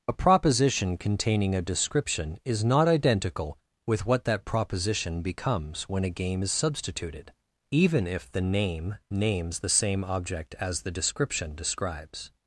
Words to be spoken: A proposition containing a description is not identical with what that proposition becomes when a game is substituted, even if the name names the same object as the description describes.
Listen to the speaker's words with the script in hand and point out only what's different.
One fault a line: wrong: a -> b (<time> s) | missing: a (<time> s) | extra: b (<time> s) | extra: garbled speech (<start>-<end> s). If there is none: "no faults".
no faults